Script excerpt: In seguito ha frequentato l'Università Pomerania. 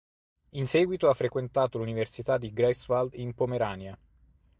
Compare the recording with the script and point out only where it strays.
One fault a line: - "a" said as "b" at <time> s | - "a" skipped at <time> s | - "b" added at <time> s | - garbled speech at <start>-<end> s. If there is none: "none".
- "di Greifswald in" added at 2.4 s